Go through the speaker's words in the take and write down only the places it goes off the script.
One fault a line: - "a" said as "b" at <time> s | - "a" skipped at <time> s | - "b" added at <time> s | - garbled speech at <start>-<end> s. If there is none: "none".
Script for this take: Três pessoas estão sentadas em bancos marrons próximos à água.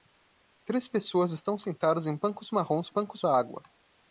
- "próximos" said as "bancos" at 2.9 s